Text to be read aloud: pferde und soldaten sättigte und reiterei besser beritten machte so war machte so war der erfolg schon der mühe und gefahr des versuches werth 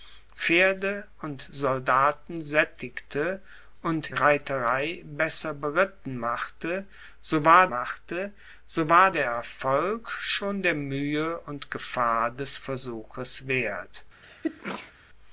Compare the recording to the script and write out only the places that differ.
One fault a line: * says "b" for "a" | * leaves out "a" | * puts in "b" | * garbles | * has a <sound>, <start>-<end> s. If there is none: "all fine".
* has a sneeze, 14.2-14.9 s